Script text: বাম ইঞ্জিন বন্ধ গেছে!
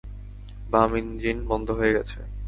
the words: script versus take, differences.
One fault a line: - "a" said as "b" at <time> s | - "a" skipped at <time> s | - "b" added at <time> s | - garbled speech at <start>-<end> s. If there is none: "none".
- "হয়ে" added at 1.8 s